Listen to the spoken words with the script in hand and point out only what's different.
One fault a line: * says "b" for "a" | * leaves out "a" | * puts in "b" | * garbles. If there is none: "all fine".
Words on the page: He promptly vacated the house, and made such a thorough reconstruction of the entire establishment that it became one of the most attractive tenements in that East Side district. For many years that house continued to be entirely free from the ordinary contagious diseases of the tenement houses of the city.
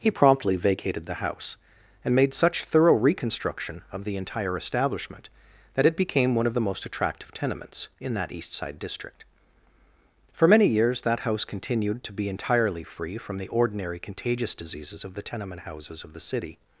* leaves out "a"